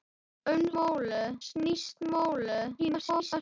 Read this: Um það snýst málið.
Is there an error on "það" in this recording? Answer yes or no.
yes